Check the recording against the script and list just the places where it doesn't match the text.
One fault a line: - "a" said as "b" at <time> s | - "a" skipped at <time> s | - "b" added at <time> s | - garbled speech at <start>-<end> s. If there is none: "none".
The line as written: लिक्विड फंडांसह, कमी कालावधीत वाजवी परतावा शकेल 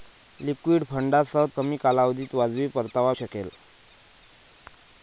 none